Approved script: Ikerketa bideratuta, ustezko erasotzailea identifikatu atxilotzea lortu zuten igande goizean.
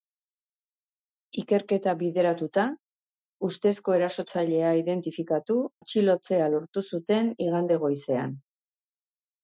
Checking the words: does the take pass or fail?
pass